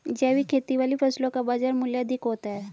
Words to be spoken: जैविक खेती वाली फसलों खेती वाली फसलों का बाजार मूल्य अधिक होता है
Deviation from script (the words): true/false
true